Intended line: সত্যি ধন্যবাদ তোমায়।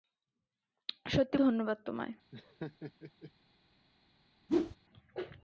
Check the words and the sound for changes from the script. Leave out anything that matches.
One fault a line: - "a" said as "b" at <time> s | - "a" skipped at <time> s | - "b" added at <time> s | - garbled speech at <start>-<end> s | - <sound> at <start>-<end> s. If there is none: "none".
- laugh at 2.3-3.3 s
- whoosh at 4.5-4.8 s